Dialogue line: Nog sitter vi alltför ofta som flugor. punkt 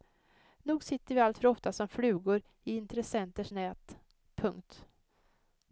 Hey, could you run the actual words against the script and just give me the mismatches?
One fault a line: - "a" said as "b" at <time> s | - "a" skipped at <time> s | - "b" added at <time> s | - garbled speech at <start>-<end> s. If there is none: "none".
- "i intressenters nät" added at 2.6 s